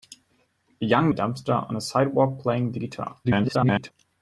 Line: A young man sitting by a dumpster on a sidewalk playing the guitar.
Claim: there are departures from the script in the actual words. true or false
true